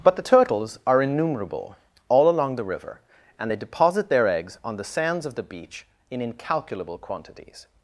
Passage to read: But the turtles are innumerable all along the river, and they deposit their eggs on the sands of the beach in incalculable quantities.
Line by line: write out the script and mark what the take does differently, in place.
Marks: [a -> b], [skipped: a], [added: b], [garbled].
But the turtles are innumerable all along the river, and they deposit their eggs on the sands of the beach in incalculable quantities.